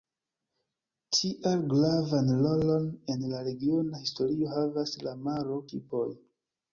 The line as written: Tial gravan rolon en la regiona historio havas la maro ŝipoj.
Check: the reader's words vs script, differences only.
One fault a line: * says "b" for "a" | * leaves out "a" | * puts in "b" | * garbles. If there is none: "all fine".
all fine